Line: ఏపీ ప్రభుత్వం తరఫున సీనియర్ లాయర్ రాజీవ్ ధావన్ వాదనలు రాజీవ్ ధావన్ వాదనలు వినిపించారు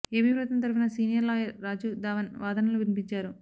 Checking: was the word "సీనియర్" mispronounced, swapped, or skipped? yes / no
no